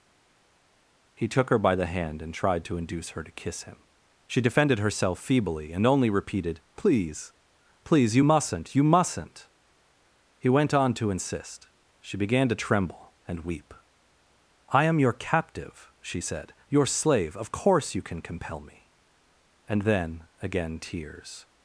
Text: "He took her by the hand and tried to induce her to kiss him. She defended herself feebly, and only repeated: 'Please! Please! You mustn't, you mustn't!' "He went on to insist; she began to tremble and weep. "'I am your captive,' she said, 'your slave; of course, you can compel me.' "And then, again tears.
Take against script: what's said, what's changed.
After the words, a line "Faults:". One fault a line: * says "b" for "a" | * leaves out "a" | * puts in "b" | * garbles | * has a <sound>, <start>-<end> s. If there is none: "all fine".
"He took her by the hand and tried to induce her to kiss him. She defended herself feebly, and only repeated: 'Please! Please! You mustn't, you mustn't!' "He went on to insist; she began to tremble and weep. "'I am your captive,' she said, 'your slave; of course, you can compel me.' "And then, again tears.
Faults:
all fine